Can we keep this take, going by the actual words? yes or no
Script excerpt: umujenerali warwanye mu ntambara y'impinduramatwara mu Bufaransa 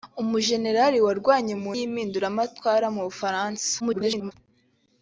no